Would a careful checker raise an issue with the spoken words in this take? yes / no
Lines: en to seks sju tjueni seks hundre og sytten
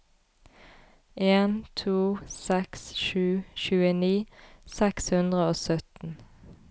no